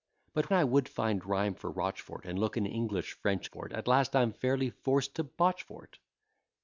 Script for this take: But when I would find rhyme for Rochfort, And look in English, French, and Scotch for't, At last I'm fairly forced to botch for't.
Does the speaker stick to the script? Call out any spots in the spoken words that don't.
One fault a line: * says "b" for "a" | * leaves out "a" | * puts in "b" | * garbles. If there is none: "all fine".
* leaves out "when"
* leaves out "and Scotch"